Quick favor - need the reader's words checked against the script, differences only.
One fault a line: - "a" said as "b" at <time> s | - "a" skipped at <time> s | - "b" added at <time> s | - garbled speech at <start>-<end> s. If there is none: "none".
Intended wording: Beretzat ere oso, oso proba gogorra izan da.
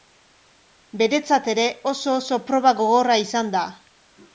none